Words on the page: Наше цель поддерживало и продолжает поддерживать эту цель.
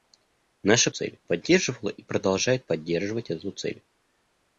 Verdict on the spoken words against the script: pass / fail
pass